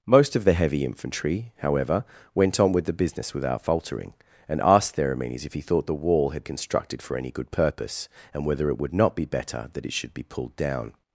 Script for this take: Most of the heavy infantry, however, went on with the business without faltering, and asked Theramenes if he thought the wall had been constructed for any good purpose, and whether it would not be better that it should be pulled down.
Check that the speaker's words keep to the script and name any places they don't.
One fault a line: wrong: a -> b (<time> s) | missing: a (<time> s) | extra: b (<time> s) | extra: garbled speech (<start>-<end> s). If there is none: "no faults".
missing: been (6.5 s)